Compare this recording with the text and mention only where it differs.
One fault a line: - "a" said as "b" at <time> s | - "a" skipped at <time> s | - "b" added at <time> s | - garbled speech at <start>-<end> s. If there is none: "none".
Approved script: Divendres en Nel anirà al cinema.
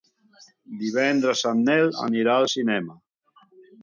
none